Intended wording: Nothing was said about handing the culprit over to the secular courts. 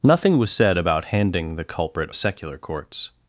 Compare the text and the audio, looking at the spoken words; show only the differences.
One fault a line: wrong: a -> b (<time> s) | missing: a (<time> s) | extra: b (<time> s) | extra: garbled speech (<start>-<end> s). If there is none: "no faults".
missing: over to the (2.1 s)